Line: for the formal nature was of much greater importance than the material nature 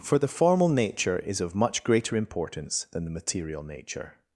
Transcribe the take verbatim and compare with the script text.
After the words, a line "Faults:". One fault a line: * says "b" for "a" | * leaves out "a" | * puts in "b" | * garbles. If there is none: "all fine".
for the formal nature is of much greater importance than the material nature
Faults:
* says "is" for "was"